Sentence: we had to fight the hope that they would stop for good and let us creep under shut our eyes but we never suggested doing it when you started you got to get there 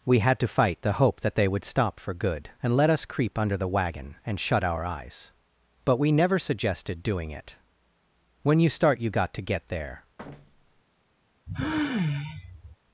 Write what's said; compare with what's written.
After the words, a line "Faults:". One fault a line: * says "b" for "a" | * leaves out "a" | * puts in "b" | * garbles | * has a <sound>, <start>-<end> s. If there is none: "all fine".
we had to fight the hope that they would stop for good and let us creep under the wagon and shut our eyes but we never suggested doing it when you start you got to get there
Faults:
* puts in "the wagon and"
* says "start" for "started"
* has a thud, 10.2-10.8 s
* has a sigh, 11.5-12.8 s